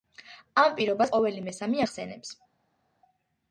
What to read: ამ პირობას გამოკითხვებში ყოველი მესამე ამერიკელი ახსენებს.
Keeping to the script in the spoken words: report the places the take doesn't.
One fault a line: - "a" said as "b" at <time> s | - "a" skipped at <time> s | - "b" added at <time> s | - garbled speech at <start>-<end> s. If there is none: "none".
- "გამოკითხვებში" skipped at 1.1 s
- "ამერიკელი" skipped at 1.9 s